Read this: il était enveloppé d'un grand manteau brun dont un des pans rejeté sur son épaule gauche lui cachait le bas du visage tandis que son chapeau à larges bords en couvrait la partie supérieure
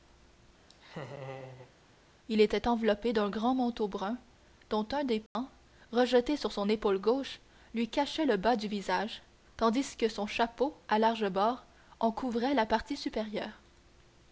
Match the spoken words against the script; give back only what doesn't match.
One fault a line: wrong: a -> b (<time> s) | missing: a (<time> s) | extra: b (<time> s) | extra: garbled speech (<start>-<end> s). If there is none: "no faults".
no faults